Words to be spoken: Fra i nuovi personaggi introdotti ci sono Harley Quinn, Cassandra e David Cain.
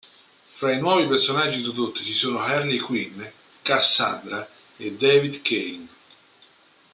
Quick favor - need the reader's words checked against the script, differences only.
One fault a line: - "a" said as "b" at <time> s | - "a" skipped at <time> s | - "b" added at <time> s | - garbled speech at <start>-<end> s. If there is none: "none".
none